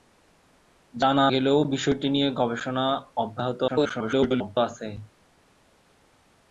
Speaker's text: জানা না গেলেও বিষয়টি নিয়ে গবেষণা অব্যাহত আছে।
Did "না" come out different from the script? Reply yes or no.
yes